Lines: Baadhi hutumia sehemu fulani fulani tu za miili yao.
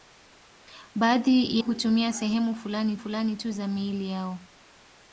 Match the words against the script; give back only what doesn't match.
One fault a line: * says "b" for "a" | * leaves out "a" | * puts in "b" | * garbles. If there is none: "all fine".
all fine